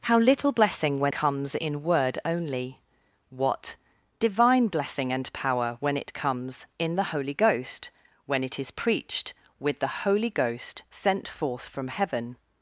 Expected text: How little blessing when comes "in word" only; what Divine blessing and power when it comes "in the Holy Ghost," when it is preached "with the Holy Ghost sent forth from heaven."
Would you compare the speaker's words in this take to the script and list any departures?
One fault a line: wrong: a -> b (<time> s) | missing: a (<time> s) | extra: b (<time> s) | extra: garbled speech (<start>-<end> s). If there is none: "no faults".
no faults